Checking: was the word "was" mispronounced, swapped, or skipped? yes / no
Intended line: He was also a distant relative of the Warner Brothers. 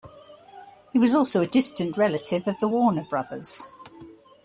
no